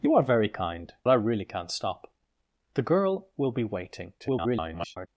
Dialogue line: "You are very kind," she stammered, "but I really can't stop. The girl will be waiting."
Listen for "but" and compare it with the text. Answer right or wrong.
wrong